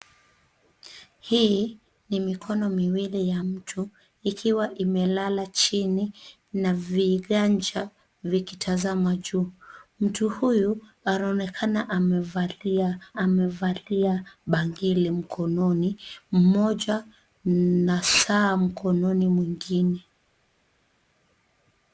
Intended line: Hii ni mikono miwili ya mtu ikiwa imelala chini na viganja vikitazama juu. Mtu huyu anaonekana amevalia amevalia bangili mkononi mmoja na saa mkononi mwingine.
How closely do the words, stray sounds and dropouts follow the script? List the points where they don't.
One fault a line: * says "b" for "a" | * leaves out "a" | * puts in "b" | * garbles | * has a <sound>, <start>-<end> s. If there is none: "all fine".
all fine